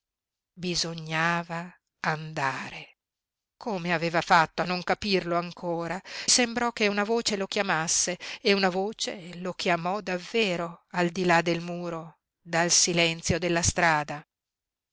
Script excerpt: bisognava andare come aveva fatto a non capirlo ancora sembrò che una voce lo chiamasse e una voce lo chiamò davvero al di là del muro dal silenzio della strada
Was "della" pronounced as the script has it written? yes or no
yes